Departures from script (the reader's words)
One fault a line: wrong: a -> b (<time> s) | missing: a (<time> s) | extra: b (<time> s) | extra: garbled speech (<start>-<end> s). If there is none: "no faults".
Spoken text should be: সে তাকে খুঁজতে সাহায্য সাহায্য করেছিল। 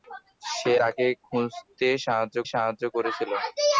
no faults